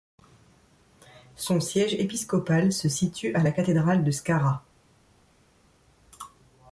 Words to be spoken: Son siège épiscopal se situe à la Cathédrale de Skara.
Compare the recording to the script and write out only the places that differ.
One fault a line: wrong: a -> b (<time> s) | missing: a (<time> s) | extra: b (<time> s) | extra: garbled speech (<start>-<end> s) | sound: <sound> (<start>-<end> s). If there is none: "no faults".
no faults